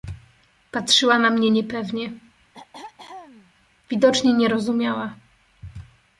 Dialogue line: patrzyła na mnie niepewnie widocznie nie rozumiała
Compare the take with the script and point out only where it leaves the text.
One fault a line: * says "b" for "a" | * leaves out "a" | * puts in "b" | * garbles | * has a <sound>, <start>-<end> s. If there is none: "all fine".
* has a throat clearing, 2.5-3.5 s